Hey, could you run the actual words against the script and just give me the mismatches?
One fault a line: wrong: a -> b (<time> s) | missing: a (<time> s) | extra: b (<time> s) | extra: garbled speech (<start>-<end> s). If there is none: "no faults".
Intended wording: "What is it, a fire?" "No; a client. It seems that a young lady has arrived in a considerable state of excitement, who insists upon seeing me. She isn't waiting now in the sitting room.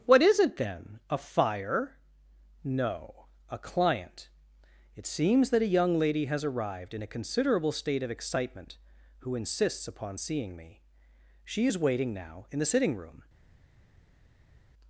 extra: then (0.6 s)
wrong: isn't -> is (11.7 s)